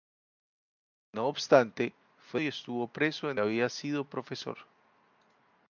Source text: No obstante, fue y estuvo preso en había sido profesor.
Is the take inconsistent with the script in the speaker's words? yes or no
no